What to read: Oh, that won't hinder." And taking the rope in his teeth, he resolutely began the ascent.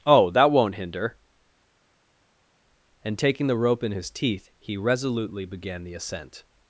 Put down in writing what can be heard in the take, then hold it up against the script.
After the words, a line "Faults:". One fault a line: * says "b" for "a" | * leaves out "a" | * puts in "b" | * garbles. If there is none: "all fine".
Oh, that won't hinder." And taking the rope in his teeth, he resolutely began the ascent.
Faults:
all fine